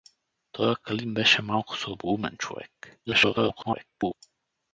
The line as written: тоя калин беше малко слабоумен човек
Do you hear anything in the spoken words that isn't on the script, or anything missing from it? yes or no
yes